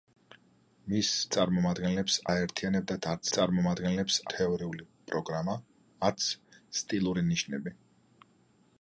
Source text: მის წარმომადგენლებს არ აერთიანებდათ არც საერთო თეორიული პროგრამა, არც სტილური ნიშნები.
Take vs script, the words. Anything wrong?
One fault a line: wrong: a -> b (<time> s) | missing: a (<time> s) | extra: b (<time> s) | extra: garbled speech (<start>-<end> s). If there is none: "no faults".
missing: არ (2.1 s)
wrong: საერთო -> წარმომადგენლებს (3.4 s)